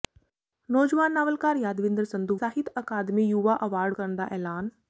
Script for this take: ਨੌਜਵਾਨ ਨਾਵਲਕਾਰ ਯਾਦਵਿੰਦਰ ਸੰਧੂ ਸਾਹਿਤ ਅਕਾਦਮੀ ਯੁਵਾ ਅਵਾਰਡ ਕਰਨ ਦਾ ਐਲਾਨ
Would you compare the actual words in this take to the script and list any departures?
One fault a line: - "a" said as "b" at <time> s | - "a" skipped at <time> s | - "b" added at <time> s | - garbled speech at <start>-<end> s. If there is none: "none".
none